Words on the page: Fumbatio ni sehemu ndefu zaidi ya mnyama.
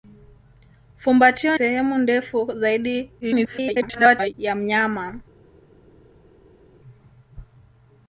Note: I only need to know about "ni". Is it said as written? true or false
false